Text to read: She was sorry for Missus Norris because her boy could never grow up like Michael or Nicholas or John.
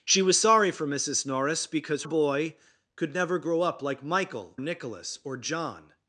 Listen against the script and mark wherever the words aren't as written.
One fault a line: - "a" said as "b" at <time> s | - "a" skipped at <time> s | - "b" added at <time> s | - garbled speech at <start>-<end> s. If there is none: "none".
- "her" skipped at 2.0 s
- "or" skipped at 4.6 s